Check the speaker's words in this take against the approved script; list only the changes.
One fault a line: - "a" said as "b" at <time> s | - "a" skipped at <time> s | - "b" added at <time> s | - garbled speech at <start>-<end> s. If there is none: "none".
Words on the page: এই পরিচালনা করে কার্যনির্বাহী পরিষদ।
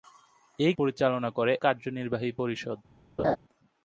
none